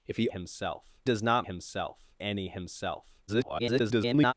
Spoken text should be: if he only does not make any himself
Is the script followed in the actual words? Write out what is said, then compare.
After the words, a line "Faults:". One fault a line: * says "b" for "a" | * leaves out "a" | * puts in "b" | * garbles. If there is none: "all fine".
if he himself does not himself any himself [garbled]
Faults:
* says "himself" for "only"
* says "himself" for "make"
* garbles